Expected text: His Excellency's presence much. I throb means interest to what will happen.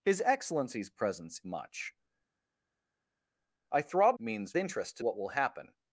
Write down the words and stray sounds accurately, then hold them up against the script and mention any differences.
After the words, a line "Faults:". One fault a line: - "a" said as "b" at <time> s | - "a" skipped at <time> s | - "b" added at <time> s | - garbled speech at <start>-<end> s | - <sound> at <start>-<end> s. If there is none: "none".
His Excellency's presence much. I throb means interest to what will happen.
Faults:
none